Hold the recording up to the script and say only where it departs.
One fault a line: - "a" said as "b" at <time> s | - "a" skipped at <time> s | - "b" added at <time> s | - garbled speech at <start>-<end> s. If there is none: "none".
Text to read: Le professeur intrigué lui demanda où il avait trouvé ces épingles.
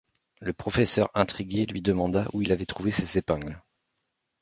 none